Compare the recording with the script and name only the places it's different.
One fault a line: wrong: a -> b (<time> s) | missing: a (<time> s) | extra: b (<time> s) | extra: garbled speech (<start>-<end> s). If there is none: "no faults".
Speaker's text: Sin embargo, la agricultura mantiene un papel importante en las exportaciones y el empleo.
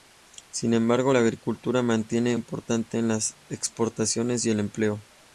missing: un papel (2.4 s)